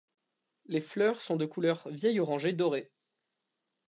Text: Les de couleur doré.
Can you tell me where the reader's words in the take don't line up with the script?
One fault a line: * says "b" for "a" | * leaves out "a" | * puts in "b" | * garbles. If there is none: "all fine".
* puts in "fleurs sont"
* puts in "vieil orangé"